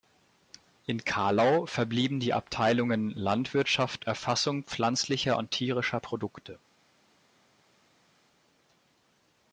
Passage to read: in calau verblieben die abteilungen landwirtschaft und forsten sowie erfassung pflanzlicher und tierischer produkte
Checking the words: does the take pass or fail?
fail